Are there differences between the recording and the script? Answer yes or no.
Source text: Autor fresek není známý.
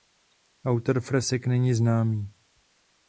no